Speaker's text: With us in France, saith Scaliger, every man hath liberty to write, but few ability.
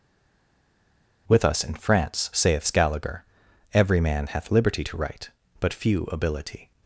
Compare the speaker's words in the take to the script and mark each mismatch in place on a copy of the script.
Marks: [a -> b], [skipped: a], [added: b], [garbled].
With us in France, saith Scaliger, every man hath liberty to write, but few ability.